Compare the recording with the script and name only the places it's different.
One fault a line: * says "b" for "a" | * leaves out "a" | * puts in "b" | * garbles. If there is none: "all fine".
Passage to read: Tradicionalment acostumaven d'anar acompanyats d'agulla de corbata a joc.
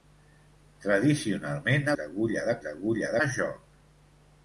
* leaves out "acostumaven d'anar acompanyats"
* says "d'agulla" for "corbata"